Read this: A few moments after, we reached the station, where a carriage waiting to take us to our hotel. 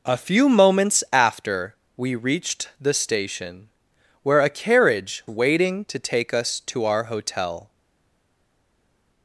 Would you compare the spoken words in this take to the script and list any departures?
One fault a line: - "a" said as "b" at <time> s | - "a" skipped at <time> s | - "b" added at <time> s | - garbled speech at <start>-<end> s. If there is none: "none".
none